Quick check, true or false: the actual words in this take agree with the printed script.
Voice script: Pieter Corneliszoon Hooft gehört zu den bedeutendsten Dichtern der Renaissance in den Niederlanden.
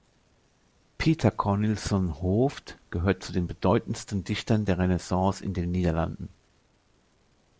true